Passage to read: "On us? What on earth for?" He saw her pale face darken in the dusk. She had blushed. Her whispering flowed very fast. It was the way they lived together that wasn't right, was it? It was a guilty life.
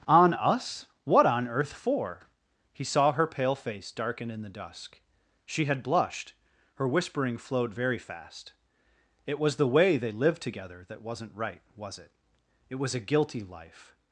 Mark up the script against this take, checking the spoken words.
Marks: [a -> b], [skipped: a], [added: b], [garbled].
"On us? What on earth for?" He saw her pale face darken in the dusk. She had blushed. Her whispering flowed very fast. It was the way they lived together that wasn't right, was it? It was a guilty life.